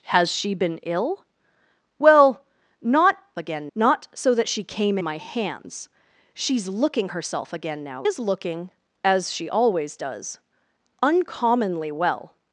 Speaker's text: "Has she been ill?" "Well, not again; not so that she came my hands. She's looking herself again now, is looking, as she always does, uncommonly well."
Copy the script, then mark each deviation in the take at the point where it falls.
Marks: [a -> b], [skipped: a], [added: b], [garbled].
"Has she been ill?" "Well, not again; not so that she came my hands. She's looking herself again now, is looking, as she always does, uncommonly well."